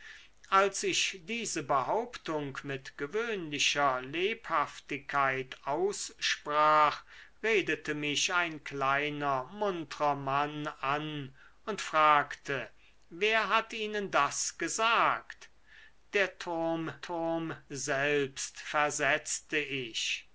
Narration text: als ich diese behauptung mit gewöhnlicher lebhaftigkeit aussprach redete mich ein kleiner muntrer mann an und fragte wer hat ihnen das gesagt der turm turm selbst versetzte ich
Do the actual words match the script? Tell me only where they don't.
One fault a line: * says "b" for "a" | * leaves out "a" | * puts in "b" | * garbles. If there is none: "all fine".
all fine